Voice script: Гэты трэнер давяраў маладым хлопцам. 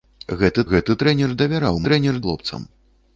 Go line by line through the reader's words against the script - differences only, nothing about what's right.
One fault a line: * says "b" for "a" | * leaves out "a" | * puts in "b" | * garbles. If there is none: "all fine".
* puts in "гэты"
* says "трэнер" for "маладым"